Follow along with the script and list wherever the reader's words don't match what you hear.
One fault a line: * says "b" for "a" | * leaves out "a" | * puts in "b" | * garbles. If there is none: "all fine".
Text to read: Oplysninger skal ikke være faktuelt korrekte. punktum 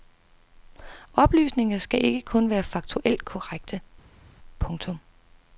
* puts in "kun"